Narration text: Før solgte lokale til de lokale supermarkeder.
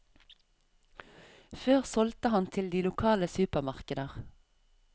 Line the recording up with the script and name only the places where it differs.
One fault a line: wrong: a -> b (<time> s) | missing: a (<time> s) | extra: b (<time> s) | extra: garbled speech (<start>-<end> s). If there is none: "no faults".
wrong: lokale -> han (2.3 s)